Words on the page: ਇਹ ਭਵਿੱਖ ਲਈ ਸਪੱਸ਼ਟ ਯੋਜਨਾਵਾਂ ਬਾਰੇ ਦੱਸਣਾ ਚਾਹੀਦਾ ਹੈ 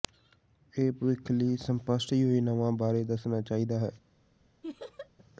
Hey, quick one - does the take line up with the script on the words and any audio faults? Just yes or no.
no